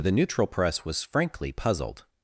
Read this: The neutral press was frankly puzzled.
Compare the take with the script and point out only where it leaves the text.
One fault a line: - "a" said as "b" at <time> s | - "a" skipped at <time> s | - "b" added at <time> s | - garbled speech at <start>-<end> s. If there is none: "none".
none